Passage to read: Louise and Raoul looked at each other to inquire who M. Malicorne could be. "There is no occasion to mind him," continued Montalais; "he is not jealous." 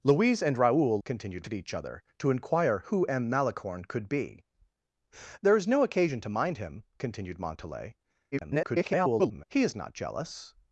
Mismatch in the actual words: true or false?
true